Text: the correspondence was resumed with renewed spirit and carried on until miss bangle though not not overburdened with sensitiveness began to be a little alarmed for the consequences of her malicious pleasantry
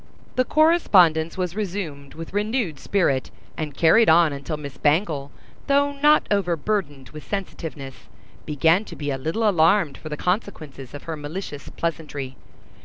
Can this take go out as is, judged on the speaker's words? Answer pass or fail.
fail